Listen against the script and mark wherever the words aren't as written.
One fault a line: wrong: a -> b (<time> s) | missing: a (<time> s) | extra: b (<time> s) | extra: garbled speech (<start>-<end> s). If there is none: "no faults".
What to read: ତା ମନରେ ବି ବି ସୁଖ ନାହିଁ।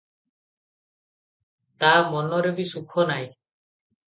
missing: ବି (2.7 s)